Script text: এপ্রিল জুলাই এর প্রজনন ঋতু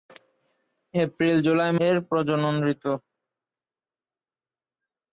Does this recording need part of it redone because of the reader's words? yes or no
no